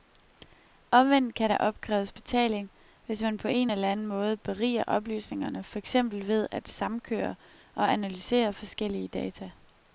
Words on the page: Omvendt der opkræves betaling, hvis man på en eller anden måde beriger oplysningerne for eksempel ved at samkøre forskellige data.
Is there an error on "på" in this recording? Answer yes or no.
no